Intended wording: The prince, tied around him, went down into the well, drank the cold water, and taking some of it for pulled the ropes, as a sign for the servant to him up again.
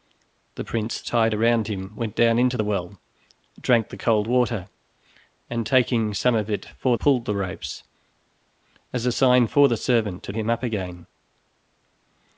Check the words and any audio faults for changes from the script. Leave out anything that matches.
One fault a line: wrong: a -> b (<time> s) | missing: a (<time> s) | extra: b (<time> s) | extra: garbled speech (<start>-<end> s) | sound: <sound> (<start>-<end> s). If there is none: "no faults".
no faults